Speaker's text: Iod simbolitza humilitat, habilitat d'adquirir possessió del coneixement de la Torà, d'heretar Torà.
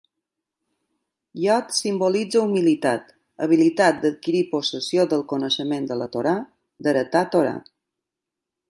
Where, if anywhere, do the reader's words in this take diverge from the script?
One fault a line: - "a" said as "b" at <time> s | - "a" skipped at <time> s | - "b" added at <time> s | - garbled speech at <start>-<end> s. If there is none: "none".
none